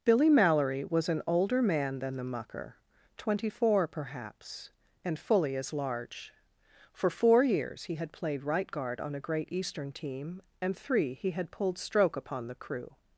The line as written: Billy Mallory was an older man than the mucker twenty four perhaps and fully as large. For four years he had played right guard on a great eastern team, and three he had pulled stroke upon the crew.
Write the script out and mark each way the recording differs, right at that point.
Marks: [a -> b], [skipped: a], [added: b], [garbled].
Billy Mallory was an older man than the mucker twenty four perhaps and fully as large. For four years he had played right guard on a great eastern team, and three he had pulled stroke upon the crew.